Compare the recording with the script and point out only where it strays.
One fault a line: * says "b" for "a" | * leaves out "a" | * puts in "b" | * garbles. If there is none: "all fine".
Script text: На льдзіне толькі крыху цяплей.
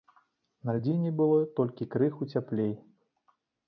* puts in "было"